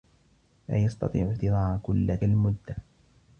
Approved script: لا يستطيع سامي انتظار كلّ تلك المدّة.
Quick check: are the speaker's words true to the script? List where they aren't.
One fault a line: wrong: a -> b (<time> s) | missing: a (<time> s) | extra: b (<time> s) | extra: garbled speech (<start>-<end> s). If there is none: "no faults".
missing: سامي (1.3 s)
missing: تلك (2.2 s)